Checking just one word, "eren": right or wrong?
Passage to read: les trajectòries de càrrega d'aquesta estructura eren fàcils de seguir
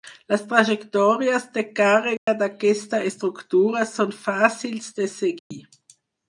wrong